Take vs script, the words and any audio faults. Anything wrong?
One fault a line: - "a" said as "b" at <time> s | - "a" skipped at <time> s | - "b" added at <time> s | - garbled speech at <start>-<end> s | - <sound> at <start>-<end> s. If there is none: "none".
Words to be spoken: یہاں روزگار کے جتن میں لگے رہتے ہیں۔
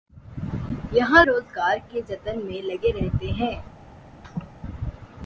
- laugh at 4.2-4.5 s